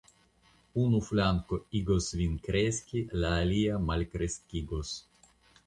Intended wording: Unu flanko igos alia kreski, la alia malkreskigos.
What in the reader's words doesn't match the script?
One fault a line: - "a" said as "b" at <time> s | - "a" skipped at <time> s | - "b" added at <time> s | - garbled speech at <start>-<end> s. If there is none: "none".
- "alia" said as "vin" at 2.2 s